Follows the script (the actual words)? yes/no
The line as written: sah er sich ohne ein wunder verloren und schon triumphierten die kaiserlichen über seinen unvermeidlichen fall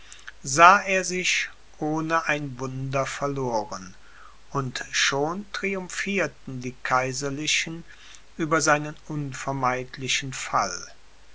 yes